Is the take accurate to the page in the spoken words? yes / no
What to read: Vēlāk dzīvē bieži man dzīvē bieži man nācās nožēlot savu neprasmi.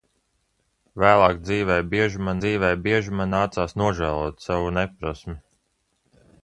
yes